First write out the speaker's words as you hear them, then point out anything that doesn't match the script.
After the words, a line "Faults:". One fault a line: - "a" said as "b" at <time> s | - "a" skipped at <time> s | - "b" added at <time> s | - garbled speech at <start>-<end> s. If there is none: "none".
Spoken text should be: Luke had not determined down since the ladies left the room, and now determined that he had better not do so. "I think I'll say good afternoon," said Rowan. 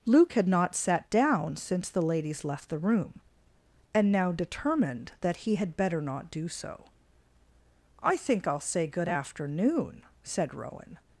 Luke had not sat down since the ladies left the room, and now determined that he had better not do so. "I think I'll say good afternoon," said Rowan.
Faults:
- "determined" said as "sat" at 0.8 s